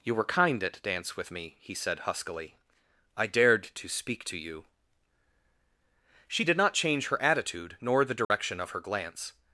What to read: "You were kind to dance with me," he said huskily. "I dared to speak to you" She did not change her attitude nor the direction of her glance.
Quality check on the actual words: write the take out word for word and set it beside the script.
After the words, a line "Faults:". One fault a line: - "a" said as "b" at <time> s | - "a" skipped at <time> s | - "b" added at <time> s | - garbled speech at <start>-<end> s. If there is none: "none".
"You were kind at dance with me," he said huskily. "I dared to speak to you" She did not change her attitude nor the direction of her glance.
Faults:
- "to" said as "at" at 0.6 s